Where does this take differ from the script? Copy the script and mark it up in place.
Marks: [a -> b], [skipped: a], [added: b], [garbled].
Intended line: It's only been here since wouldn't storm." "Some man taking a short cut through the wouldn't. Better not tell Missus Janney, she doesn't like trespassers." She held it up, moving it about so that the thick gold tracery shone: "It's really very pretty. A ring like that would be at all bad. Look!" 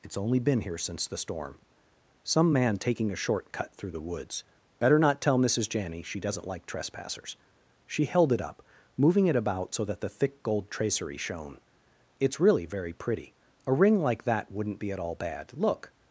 It's only been here since [wouldn't -> the] storm." "Some man taking a short cut through the [wouldn't. -> woods] Better not tell Missus Janney, she doesn't like trespassers." She held it up, moving it about so that the thick gold tracery shone: "It's really very pretty. A ring like that [would -> wouldn't] be at all bad. Look!"